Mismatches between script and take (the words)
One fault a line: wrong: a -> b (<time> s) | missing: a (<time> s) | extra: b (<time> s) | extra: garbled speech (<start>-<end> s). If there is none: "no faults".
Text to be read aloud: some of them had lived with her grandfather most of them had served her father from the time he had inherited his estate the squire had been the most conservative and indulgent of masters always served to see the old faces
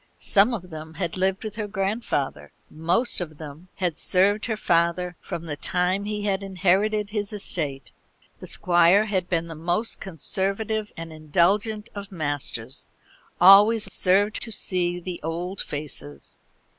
no faults